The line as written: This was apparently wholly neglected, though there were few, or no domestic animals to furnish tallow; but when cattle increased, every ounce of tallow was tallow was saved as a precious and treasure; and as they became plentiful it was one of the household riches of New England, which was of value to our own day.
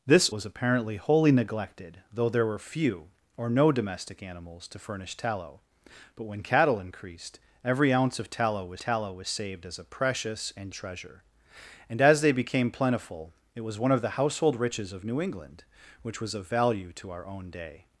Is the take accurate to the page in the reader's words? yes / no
yes